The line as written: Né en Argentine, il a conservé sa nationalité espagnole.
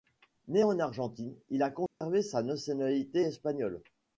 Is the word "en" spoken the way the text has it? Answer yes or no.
yes